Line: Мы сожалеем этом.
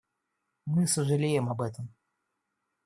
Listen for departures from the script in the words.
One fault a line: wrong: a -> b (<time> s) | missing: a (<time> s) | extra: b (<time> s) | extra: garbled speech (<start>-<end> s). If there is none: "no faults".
extra: об (1.5 s)